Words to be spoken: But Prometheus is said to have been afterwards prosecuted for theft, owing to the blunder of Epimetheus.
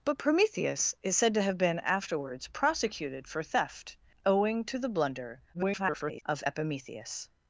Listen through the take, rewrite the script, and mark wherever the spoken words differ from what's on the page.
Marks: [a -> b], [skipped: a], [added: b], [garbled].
But Prometheus is said to have been afterwards prosecuted for theft, owing to the blunder [garbled] of Epimetheus.